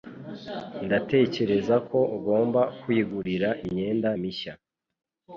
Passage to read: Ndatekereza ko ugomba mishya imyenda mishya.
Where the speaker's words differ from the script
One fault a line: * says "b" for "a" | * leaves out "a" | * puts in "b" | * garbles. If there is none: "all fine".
* says "kwigurira" for "mishya"